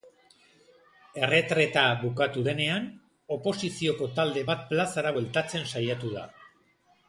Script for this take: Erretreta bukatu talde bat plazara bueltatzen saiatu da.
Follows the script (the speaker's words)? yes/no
no